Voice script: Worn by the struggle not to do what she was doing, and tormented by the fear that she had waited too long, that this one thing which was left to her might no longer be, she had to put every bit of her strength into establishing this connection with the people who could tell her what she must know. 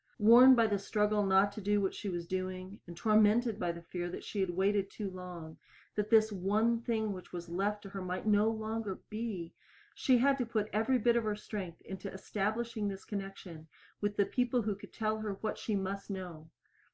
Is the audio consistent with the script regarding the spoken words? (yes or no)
yes